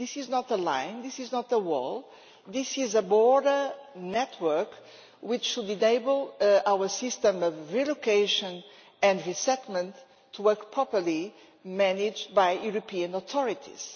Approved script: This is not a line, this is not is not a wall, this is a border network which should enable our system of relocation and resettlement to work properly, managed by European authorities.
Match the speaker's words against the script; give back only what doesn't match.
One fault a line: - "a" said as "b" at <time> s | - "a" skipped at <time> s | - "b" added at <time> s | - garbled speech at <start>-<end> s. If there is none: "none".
- "is not" skipped at 1.5 s